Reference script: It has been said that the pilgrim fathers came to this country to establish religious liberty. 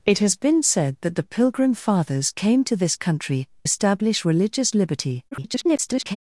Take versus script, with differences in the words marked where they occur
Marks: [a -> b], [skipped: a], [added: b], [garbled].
It has been said that the pilgrim fathers came to this country [skipped: to] establish religious liberty. [garbled]